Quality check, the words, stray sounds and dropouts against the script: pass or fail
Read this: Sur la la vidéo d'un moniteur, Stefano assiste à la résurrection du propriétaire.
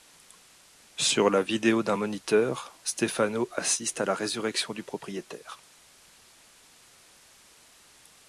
fail